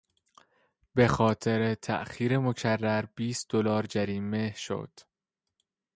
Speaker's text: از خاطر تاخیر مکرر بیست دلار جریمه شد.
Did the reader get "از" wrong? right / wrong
wrong